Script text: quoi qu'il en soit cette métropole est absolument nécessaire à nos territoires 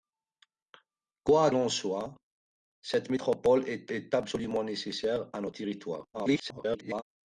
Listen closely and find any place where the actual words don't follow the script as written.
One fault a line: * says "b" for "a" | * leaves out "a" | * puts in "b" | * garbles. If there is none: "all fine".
* leaves out "qu'il"
* puts in "est"
* garbles